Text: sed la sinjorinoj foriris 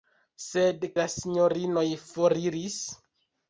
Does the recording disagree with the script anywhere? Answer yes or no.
no